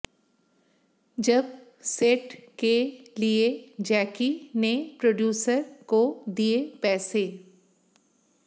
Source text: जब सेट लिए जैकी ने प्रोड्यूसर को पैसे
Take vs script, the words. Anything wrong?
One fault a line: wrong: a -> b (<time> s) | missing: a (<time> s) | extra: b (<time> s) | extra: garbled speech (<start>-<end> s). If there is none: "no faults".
extra: के (2.6 s)
extra: दिए (6.3 s)